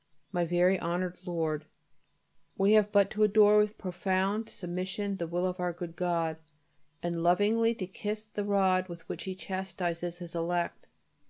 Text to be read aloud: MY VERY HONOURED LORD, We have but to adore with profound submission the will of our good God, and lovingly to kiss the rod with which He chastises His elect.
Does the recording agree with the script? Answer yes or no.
yes